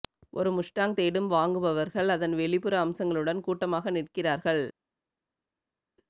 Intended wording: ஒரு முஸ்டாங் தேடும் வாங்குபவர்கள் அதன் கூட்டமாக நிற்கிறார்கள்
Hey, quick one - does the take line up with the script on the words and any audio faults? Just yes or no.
no